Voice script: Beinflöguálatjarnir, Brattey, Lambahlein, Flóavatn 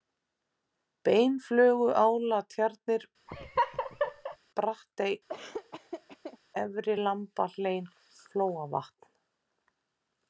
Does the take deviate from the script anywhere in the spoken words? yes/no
yes